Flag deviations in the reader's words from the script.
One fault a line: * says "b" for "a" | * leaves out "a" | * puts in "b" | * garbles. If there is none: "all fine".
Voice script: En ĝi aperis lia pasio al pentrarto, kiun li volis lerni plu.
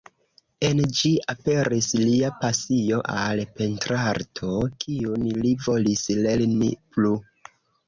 all fine